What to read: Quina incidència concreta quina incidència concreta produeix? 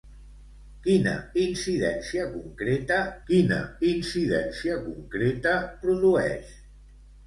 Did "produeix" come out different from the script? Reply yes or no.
no